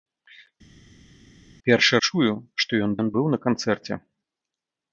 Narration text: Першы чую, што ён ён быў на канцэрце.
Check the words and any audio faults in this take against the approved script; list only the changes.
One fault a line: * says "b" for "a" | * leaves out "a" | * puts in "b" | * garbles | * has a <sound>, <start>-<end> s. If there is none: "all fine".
all fine